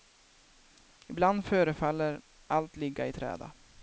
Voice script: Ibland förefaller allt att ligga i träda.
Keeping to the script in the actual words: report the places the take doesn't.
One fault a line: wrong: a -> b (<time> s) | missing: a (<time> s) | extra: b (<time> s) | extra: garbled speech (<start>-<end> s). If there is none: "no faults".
missing: att (2.8 s)